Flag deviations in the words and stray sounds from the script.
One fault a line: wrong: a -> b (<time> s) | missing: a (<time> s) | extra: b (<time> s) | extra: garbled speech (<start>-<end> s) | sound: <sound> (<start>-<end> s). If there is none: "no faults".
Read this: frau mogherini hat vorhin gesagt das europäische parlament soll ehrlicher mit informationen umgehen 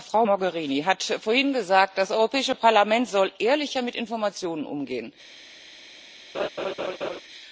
sound: laugh (6.3-7.2 s)